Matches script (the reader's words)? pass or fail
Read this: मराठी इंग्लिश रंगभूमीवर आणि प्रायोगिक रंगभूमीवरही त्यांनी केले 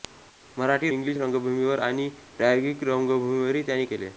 pass